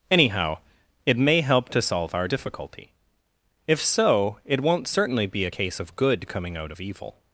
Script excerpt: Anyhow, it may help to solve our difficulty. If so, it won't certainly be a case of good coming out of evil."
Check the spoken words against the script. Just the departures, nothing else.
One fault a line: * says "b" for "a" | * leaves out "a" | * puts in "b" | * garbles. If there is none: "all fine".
all fine